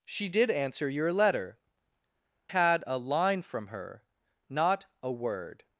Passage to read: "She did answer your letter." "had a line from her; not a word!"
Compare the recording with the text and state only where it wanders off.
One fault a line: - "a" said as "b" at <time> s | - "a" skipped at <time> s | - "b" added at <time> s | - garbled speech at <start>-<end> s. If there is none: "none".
none